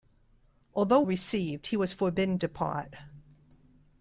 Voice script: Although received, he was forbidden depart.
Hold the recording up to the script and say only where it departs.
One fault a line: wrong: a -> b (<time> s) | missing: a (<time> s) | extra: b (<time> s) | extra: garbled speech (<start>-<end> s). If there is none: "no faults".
no faults